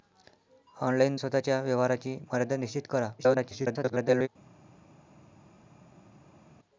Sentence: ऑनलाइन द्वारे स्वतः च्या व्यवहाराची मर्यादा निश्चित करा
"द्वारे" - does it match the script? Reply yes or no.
no